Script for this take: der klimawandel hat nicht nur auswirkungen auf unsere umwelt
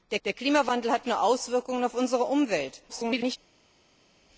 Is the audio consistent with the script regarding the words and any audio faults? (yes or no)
no